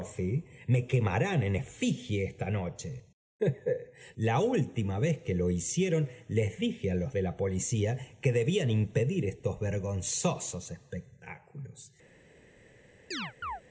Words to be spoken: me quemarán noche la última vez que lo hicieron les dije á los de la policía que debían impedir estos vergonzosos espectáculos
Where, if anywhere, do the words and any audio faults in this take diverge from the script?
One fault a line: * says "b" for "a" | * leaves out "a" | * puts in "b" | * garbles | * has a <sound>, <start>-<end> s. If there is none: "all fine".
* puts in "en efigie esta"
* has a chirp, 13.1-13.6 s